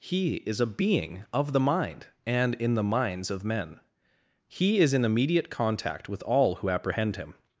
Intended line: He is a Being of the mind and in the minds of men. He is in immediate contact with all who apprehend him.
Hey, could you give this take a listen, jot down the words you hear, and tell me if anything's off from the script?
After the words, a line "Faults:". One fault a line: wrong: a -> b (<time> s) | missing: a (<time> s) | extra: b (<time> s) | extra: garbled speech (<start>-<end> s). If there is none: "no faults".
He is a Being of the mind and in the minds of men. He is in immediate contact with all who apprehend him.
Faults:
no faults